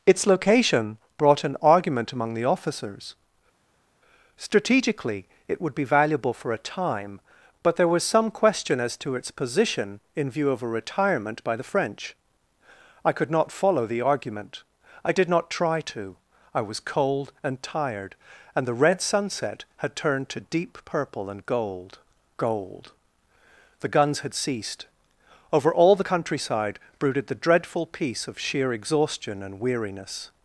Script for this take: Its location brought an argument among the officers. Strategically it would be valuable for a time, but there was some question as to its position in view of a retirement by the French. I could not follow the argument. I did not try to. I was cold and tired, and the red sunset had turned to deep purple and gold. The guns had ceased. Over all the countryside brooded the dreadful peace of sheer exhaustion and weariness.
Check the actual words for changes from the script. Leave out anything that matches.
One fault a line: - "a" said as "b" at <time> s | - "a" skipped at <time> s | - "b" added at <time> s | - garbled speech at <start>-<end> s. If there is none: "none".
- "gold" added at 22.4 s